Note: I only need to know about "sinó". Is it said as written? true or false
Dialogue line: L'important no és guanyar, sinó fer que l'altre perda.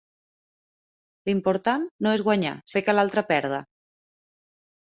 false